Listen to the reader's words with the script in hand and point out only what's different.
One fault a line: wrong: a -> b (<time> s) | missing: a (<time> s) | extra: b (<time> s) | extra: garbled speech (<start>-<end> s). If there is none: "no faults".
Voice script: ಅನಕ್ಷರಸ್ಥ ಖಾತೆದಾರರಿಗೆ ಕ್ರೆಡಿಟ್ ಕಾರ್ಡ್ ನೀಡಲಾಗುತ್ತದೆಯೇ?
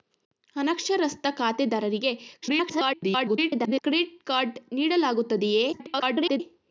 extra: garbled speech (2.4-3.8 s)
extra: garbled speech (5.7-6.4 s)